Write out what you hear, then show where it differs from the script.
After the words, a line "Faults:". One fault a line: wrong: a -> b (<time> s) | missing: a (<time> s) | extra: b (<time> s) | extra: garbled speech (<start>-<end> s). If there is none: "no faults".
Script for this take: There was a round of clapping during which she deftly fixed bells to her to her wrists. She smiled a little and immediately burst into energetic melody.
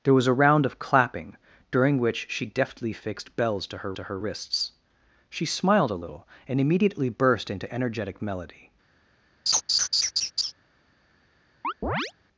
There was a round of clapping during which she deftly fixed bells to her to her wrists. She smiled a little and immediately burst into energetic melody.
Faults:
no faults